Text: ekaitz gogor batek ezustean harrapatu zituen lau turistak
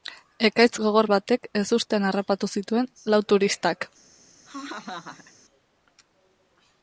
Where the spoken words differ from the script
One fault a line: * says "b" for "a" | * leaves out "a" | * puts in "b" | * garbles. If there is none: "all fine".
all fine